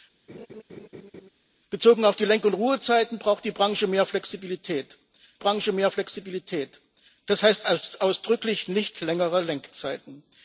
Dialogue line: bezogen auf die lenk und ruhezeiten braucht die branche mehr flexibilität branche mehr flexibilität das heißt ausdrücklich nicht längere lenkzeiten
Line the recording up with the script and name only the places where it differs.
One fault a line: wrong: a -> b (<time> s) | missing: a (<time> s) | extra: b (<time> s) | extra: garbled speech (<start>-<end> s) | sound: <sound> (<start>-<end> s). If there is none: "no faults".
sound: laugh (0.3-1.3 s)